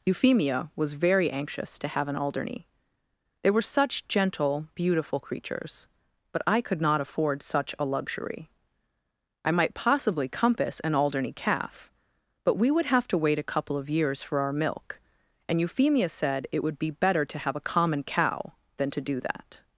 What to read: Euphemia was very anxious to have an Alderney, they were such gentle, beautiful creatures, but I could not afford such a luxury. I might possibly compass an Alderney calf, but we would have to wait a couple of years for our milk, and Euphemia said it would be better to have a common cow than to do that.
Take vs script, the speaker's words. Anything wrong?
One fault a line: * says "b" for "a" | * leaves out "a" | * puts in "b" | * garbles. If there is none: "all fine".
all fine